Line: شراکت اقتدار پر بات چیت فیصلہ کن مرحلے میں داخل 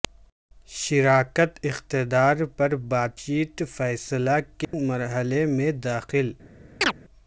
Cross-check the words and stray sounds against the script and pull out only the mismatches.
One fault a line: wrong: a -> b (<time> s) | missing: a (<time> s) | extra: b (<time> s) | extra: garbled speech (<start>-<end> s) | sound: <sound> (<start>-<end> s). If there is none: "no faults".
sound: dropout (4.6-4.7 s)
sound: chirp (6.8-6.9 s)